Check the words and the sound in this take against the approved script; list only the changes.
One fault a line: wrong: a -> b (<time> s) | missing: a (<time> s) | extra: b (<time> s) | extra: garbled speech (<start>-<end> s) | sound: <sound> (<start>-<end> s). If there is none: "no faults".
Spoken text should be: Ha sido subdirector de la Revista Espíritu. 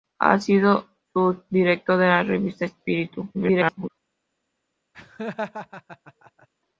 extra: garbled speech (3.3-3.9 s)
sound: laugh (4.9-6.5 s)